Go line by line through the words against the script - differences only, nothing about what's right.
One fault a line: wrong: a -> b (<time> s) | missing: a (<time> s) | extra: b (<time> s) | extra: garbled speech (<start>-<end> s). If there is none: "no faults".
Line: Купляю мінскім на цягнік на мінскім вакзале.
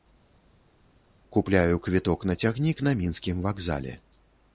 wrong: мінскім -> квіток (1.8 s)